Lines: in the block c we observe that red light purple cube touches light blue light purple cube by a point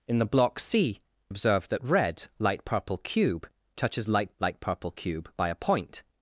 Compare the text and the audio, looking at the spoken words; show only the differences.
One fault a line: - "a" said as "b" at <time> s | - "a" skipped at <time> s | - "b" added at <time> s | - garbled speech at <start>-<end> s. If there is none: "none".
- "we" skipped at 1.0 s
- "blue" skipped at 4.4 s